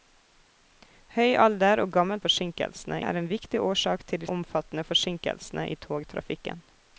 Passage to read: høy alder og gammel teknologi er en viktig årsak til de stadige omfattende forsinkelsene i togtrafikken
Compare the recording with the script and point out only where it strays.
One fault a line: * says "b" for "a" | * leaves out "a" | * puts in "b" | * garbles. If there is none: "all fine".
* says "forsinkelsene" for "teknologi"
* leaves out "stadige"